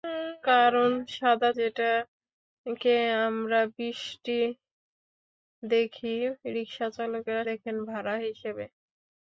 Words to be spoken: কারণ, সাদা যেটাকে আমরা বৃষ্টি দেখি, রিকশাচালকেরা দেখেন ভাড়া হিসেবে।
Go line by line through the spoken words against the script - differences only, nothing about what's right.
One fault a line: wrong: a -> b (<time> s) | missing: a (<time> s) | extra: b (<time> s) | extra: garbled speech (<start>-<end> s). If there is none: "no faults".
no faults